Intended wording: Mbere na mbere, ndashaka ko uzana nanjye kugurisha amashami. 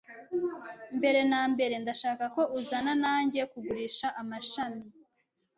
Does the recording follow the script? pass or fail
pass